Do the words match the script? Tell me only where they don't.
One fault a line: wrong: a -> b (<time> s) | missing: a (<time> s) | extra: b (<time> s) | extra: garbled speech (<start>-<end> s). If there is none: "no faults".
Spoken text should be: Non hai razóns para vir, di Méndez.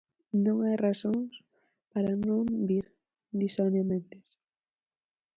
extra: non (2.3 s)
extra: Sonia (3.5 s)